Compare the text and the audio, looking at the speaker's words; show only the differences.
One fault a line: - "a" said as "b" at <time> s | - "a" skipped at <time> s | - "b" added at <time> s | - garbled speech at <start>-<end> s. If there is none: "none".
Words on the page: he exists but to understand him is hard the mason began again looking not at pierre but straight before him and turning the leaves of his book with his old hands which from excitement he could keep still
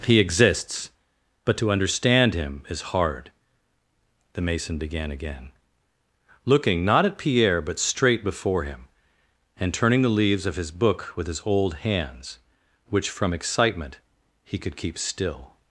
none